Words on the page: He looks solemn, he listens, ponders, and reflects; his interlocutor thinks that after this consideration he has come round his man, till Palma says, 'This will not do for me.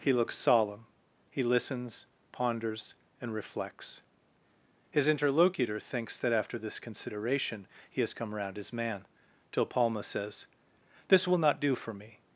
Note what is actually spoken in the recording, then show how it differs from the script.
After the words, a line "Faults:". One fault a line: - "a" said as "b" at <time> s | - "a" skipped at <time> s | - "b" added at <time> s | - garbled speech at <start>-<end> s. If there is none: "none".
He looks solemn, he listens, ponders, and reflects; his interlocutor thinks that after this consideration he has come round his man, till Palma says, 'This will not do for me.
Faults:
none